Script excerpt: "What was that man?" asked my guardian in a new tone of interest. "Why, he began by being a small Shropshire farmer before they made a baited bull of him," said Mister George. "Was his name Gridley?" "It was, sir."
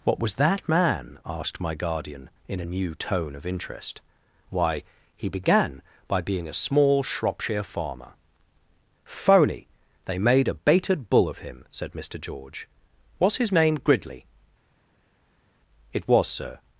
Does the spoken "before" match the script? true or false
false